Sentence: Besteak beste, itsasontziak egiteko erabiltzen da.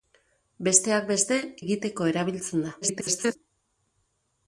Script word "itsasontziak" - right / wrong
wrong